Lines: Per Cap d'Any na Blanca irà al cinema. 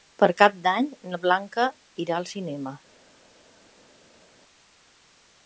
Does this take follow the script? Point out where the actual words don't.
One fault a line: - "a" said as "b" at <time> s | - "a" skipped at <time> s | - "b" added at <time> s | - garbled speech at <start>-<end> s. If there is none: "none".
none